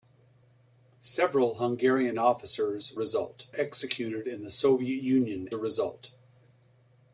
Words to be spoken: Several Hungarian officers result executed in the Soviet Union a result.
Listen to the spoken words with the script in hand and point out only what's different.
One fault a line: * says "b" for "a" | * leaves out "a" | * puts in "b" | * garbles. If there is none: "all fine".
all fine